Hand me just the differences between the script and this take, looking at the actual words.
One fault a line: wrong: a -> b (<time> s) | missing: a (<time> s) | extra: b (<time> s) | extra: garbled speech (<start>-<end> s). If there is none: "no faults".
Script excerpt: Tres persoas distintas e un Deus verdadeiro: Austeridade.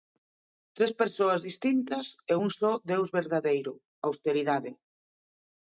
extra: só (2.6 s)